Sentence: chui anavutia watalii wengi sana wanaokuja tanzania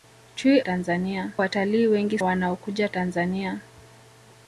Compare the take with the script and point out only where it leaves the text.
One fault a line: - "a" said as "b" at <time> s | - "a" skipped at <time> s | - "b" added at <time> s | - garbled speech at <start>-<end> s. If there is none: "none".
- "anavutia" said as "tanzania" at 0.6 s
- "sana" skipped at 2.2 s